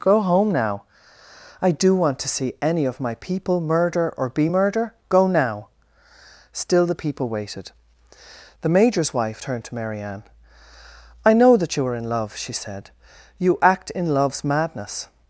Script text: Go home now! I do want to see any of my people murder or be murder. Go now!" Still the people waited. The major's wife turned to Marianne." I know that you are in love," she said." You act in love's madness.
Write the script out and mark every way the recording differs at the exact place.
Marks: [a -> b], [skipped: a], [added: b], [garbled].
Go home now! I do want to see any of my people murder or be murder. Go now!" Still the people waited. The major's wife turned to Marianne." I know that you are in love," she said." You act in love's madness.